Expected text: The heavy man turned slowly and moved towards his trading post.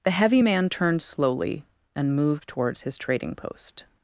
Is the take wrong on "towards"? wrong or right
right